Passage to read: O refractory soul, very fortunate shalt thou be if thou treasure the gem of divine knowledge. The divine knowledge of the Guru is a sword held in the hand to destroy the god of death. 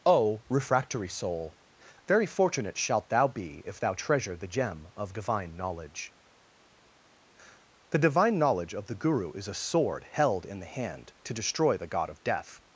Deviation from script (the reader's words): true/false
false